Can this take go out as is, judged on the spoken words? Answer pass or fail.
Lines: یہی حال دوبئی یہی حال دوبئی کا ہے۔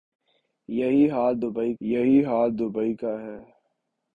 pass